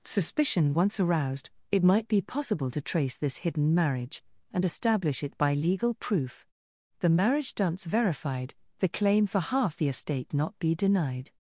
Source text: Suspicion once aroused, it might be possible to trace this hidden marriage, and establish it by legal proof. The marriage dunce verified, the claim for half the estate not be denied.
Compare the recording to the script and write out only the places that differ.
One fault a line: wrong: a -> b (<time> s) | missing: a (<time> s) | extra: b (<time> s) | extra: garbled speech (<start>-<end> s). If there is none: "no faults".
no faults